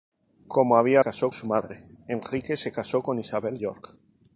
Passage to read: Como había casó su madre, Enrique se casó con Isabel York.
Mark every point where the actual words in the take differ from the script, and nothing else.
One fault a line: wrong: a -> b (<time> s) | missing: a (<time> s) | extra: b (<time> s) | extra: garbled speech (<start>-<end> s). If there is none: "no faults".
no faults